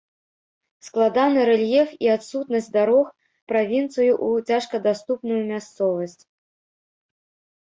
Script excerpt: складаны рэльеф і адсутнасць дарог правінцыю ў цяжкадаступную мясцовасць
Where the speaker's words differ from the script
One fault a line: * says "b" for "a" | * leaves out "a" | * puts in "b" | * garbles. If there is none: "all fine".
all fine